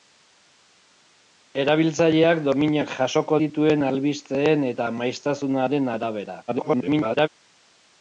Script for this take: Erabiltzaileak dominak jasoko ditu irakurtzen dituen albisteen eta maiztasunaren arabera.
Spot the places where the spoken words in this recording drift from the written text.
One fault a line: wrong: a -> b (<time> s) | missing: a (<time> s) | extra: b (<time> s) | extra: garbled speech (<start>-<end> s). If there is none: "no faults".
missing: ditu irakurtzen (3.4 s)
extra: garbled speech (6.5-7.3 s)